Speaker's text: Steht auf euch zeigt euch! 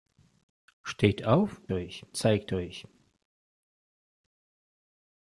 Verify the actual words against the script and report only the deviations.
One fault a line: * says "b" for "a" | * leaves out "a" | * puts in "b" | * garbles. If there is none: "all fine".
all fine